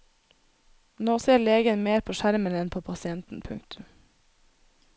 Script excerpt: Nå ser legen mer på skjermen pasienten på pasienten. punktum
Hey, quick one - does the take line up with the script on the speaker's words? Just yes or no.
no